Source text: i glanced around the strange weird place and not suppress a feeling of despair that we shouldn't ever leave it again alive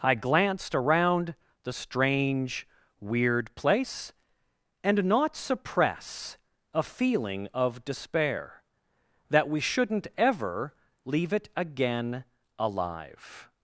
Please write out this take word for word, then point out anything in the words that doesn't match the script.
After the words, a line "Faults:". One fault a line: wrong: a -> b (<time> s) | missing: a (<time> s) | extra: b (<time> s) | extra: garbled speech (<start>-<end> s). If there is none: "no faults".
i glanced around the strange weird place and not suppress a feeling of despair that we shouldn't ever leave it again alive
Faults:
no faults